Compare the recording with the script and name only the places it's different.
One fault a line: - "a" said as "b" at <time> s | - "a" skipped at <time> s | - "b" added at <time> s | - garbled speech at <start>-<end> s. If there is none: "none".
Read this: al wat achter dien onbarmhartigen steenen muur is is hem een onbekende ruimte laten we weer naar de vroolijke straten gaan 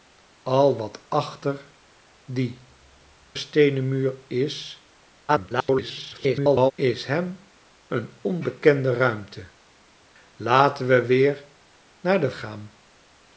- "onbarmhartigen" skipped at 2.7 s
- garbled speech at 5.3-6.7 s
- "vroolijke straten" skipped at 12.3 s